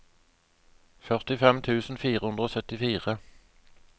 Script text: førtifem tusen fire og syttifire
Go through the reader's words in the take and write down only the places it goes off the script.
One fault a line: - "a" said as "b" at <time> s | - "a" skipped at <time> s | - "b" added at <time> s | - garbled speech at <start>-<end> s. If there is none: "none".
- "hundre" added at 2.2 s